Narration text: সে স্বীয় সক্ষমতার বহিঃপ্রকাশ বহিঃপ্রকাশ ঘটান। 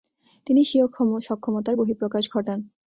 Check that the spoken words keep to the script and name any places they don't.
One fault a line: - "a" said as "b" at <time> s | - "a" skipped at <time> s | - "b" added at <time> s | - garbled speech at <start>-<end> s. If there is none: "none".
- "সে" said as "তিনি" at 0.5 s
- "বহিঃপ্রকাশ" skipped at 2.2 s